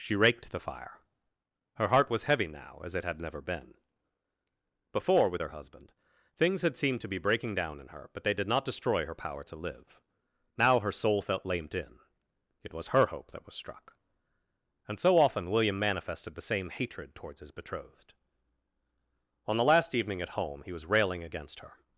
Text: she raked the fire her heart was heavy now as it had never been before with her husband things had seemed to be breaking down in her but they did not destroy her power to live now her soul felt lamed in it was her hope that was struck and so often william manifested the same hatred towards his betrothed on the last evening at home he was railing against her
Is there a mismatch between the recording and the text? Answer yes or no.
no